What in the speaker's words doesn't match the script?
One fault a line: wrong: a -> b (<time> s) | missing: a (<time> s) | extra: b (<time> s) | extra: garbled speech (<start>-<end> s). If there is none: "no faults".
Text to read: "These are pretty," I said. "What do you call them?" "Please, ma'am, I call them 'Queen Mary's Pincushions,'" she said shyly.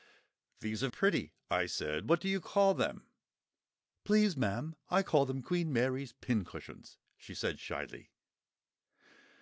no faults